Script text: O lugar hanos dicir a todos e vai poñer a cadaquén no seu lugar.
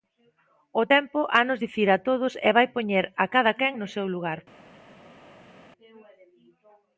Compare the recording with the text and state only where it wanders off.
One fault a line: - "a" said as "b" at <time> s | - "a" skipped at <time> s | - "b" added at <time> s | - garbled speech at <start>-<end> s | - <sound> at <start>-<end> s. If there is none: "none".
- "lugar" said as "tempo" at 0.9 s